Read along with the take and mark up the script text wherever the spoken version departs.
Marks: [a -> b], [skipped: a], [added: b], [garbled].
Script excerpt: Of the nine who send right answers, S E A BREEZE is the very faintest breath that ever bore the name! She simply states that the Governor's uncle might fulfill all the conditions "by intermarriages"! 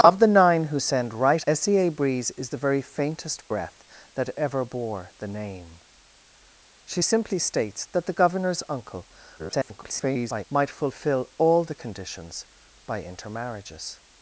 Of the nine who send right [skipped: answers,] S E A BREEZE is the very faintest breath that ever bore the name! She simply states that the Governor's uncle [garbled] might fulfill all the conditions "by intermarriages"!